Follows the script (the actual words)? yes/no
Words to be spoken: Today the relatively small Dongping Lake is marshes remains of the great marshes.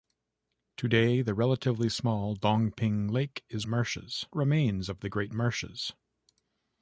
yes